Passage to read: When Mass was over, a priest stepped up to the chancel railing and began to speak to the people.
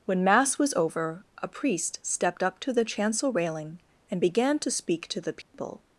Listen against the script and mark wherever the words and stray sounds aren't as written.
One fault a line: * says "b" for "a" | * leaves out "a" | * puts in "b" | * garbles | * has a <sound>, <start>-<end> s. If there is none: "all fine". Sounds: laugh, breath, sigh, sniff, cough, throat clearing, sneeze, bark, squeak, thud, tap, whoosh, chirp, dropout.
* has a dropout, 5.4-5.5 s